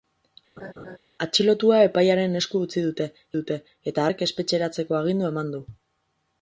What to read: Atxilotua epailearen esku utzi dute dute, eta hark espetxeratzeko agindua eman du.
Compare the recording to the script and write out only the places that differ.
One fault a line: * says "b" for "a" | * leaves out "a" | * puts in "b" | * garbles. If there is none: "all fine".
all fine